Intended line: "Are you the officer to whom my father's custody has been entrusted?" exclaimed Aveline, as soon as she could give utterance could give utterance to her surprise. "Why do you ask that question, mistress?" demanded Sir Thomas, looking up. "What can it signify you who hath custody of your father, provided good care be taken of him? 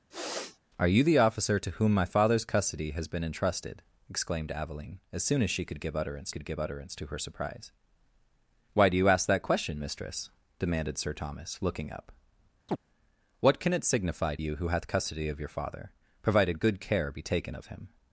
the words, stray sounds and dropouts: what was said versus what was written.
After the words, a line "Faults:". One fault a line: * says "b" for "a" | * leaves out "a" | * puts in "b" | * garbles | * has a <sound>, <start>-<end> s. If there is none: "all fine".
"Are you the officer to whom my father's custody has been entrusted?" exclaimed Aveline, as soon as she could give utterance could give utterance to her surprise. "Why do you ask that question, mistress?" demanded Sir Thomas, looking up. "What can it signify you who hath custody of your father, provided good care be taken of him?
Faults:
* has a sniff, 0.1-0.6 s
* has a chirp, 12.7-12.8 s